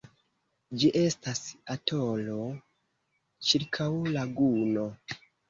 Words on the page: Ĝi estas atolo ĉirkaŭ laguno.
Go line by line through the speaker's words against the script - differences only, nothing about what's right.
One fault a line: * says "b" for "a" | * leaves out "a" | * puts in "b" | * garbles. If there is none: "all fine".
all fine